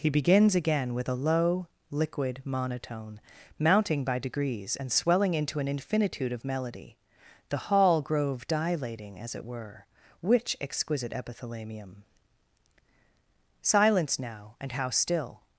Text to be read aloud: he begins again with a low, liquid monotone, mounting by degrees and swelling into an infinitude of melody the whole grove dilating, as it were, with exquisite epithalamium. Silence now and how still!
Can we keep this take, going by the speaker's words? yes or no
no